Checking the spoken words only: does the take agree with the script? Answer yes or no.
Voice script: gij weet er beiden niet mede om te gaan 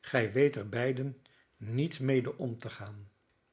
yes